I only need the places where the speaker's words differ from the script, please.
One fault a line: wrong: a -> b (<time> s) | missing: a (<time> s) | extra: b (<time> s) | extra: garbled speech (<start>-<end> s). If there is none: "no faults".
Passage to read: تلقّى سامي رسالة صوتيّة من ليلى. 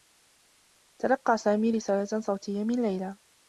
no faults